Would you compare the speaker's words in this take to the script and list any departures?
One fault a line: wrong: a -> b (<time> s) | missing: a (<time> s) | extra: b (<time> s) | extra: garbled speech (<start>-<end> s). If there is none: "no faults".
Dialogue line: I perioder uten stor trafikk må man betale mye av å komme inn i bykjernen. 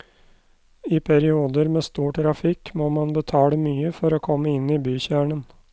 wrong: uten -> med (1.7 s)
wrong: av -> for (4.0 s)